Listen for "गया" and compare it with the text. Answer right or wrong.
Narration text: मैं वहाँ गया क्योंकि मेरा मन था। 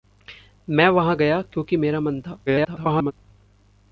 right